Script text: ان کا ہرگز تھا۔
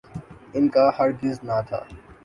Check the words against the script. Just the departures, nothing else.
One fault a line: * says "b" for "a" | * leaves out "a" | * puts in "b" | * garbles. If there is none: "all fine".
* puts in "نہ"